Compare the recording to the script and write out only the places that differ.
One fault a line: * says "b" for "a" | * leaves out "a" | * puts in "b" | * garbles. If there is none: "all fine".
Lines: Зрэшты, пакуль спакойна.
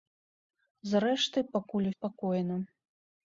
all fine